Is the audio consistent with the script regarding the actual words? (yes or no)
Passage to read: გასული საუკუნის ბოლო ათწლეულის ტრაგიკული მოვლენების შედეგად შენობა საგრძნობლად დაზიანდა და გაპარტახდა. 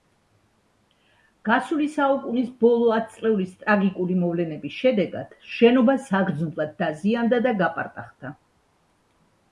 yes